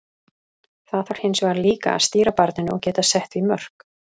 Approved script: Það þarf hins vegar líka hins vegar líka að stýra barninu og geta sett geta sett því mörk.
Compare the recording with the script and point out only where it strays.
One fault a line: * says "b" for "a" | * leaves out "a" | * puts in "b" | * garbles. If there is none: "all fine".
* leaves out "hins vegar líka"
* leaves out "geta sett"